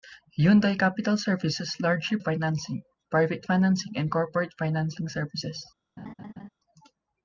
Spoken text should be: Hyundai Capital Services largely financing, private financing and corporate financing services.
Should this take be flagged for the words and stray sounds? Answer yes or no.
yes